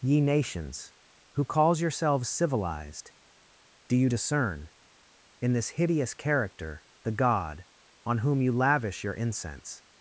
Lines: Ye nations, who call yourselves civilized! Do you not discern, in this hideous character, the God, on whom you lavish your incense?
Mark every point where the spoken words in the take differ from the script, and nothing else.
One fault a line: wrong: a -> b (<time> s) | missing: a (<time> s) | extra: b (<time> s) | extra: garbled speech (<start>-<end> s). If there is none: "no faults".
wrong: call -> calls (1.4 s)
missing: not (4.1 s)